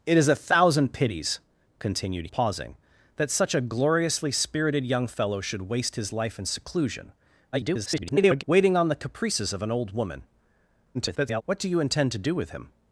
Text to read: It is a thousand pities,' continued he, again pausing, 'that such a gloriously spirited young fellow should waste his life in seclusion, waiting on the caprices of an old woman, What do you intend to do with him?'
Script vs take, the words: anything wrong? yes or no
yes